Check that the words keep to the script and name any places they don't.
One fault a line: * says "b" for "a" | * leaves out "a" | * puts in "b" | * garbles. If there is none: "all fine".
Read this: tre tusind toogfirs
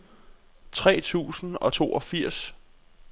* puts in "og"